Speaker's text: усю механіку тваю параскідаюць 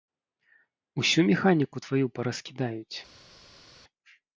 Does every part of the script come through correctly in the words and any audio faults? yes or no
yes